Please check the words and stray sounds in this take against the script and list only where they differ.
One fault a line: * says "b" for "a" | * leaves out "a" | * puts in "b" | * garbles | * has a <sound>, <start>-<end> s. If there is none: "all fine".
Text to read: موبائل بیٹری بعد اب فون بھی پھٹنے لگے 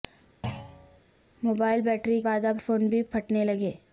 * has a thud, 0.4-1.0 s